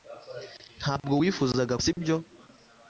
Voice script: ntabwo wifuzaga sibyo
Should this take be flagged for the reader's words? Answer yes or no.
no